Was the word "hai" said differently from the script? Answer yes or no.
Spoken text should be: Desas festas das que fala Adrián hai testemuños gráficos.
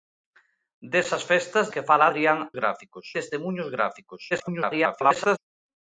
yes